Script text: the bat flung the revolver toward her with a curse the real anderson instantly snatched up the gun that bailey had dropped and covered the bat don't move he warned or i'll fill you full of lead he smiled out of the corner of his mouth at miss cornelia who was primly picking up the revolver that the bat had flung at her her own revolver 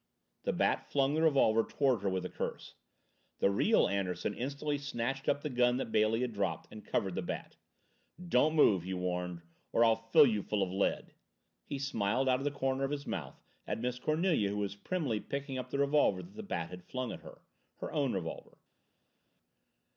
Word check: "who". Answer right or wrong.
right